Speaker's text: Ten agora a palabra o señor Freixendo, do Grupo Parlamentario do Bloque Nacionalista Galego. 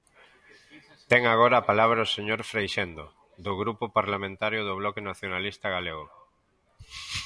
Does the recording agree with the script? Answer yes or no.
yes